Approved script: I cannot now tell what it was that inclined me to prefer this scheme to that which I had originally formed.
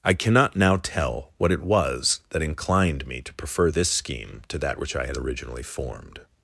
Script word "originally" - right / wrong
right